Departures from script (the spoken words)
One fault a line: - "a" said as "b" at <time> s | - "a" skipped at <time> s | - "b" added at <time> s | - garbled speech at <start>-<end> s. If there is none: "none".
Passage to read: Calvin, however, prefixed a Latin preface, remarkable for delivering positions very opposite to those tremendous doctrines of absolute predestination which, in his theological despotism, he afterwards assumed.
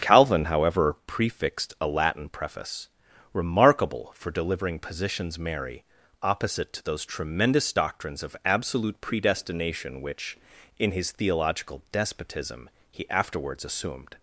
- "very" said as "merry" at 5.4 s